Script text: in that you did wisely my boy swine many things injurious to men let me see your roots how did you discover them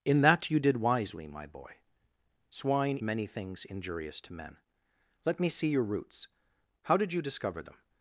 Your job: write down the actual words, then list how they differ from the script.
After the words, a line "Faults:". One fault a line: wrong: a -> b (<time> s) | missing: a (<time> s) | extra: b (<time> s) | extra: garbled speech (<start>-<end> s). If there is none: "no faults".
in that you did wisely my boy swine many things injurious to men let me see your roots how did you discover them
Faults:
no faults